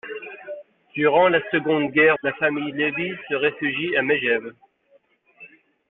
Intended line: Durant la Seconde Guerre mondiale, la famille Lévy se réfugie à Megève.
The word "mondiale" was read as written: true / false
false